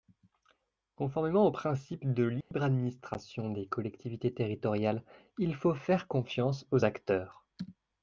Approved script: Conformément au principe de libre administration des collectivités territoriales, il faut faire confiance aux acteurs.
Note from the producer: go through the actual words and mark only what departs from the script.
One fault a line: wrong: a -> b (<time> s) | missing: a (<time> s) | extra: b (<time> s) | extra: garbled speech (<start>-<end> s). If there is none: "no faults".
no faults